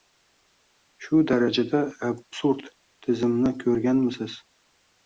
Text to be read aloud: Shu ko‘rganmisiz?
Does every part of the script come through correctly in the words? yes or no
no